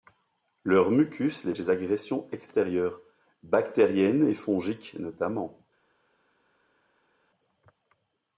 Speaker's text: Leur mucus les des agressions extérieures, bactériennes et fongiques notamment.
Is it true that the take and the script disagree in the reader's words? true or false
false